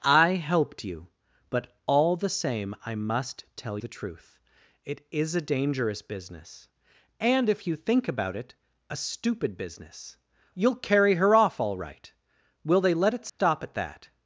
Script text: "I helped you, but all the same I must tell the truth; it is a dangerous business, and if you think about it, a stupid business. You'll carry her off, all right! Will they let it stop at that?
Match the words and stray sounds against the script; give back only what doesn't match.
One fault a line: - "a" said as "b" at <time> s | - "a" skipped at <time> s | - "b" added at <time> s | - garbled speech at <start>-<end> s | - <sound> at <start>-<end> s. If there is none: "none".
- dropout at 13.3-13.4 s